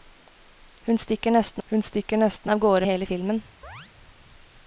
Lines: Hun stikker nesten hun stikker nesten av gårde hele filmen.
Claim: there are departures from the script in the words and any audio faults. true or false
true